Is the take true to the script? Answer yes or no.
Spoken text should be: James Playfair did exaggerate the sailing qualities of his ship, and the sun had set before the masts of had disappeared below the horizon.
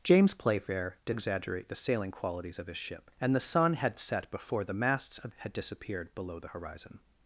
yes